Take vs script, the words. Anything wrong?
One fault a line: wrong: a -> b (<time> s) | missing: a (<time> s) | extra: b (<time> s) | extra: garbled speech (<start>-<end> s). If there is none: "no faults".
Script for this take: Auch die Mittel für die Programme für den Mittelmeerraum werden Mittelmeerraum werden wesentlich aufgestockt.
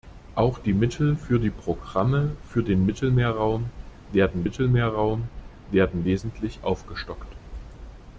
no faults